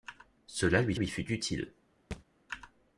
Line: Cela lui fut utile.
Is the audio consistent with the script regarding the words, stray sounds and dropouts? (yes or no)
no